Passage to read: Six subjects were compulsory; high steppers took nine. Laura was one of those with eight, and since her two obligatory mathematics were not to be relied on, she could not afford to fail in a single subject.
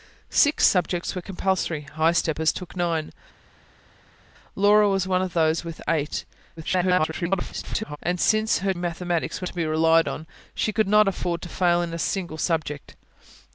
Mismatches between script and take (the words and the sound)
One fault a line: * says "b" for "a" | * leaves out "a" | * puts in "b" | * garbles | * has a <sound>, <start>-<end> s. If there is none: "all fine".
* garbles
* leaves out "two obligatory"
* leaves out "not"